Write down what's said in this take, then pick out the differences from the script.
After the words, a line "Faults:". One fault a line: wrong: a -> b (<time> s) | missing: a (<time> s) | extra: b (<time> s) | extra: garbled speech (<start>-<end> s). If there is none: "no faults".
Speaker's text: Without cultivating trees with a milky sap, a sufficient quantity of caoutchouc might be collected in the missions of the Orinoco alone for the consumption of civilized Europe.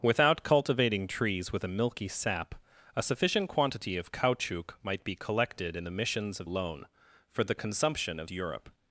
Without cultivating trees with a milky sap, a sufficient quantity of caoutchouc might be collected in the missions of alone for the consumption of Europe.
Faults:
missing: the Orinoco (6.5 s)
missing: civilized (8.3 s)